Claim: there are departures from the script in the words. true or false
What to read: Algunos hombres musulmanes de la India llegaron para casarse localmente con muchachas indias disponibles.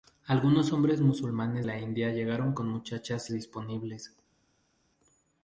true